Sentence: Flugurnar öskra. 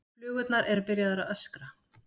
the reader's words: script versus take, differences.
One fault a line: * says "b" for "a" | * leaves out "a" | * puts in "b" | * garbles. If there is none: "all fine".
* puts in "eru byrjaðar að"